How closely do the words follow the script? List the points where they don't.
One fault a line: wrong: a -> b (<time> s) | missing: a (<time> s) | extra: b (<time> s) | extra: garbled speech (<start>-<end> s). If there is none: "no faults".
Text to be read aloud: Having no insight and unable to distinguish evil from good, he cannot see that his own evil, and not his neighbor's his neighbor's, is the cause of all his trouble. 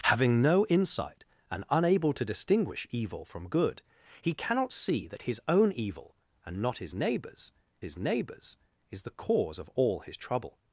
no faults